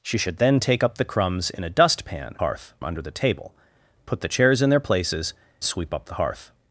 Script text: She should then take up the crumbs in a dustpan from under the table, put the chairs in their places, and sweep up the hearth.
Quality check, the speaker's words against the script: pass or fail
fail